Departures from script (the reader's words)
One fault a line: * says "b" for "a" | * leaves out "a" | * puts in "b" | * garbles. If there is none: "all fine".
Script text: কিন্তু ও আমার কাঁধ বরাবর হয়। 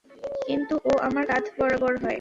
all fine